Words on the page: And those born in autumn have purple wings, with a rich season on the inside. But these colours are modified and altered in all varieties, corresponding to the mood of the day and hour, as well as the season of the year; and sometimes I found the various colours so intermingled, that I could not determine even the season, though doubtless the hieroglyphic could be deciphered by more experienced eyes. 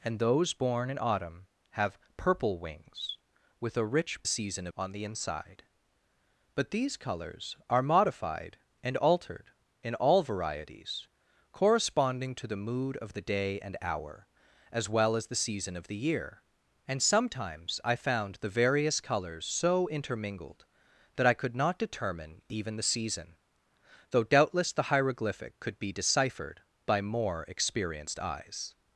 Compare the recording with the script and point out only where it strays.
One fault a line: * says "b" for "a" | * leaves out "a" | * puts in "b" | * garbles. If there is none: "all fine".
all fine